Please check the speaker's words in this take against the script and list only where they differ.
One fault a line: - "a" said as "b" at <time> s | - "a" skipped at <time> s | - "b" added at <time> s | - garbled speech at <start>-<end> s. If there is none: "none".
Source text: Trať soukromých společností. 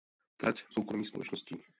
none